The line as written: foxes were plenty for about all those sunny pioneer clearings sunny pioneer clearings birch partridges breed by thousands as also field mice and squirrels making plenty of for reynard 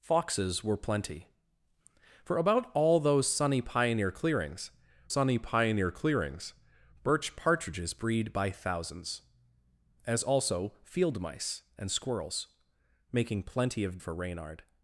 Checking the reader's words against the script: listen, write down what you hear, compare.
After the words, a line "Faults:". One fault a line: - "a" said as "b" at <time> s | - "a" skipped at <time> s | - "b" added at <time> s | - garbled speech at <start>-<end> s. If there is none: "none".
foxes were plenty for about all those sunny pioneer clearings sunny pioneer clearings birch partridges breed by thousands as also field mice and squirrels making plenty of for reynard
Faults:
none